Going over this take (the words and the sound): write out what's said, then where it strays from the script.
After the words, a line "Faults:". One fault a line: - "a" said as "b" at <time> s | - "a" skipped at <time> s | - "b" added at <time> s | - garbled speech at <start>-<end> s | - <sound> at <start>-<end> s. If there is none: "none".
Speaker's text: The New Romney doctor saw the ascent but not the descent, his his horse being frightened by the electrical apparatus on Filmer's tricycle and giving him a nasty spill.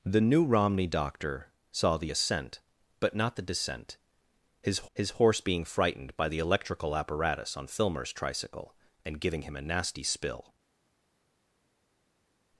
The New Romney doctor saw the ascent but not the descent, his his horse being frightened by the electrical apparatus on Filmer's tricycle and giving him a nasty spill.
Faults:
none